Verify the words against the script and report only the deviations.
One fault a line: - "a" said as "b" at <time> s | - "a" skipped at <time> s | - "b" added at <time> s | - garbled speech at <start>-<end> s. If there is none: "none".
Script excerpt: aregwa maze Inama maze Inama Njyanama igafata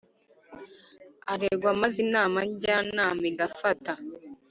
- "maze Inama" skipped at 2.4 s